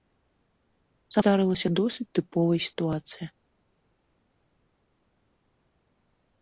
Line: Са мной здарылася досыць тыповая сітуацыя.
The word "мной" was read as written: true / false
false